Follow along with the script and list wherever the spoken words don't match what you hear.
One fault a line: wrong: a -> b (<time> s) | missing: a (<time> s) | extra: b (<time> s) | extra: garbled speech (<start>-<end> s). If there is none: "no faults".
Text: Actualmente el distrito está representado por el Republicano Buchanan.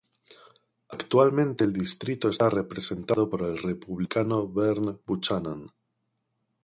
extra: Vern (4.5 s)